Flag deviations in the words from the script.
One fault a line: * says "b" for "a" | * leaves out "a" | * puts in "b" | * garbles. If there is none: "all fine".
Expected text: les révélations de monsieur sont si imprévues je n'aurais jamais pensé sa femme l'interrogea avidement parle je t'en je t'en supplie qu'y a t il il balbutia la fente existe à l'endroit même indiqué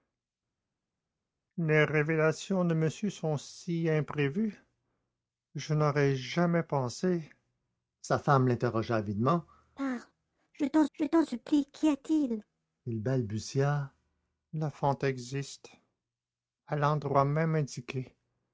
all fine